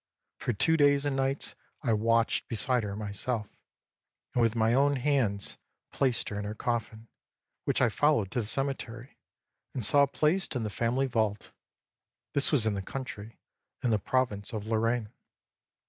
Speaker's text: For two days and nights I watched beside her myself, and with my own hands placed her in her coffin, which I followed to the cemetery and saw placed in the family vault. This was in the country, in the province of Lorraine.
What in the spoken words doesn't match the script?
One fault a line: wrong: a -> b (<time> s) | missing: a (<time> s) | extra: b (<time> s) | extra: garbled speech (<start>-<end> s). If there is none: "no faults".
no faults